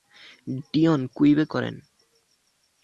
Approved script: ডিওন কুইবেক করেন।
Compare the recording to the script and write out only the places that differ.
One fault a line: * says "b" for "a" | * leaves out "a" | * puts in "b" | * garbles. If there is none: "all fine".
all fine